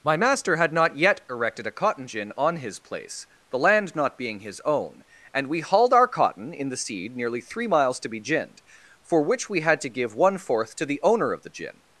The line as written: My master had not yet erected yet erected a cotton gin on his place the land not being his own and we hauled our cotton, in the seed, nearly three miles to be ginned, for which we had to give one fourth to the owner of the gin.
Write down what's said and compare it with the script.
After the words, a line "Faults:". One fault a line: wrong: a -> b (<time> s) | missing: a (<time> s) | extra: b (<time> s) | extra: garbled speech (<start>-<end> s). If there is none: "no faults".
My master had not yet erected a cotton gin on his place the land not being his own and we hauled our cotton, in the seed, nearly three miles to be ginned, for which we had to give one fourth to the owner of the gin.
Faults:
missing: yet erected (1.7 s)